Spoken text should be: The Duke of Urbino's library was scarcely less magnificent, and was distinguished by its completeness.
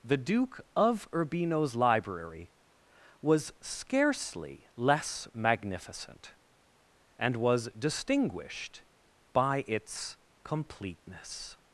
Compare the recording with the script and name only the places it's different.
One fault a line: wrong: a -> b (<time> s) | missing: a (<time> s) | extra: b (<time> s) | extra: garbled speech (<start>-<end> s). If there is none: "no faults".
no faults